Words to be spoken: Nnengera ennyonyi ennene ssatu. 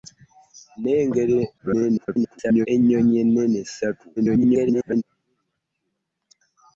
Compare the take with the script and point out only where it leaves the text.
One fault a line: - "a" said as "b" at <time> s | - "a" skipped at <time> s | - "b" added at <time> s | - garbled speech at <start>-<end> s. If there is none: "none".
- garbled speech at 1.6-2.7 s
- garbled speech at 4.2-5.0 s